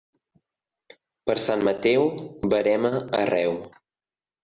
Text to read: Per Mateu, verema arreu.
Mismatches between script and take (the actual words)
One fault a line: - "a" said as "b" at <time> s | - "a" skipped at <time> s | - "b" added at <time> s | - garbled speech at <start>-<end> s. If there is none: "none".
- "Sant" added at 1.4 s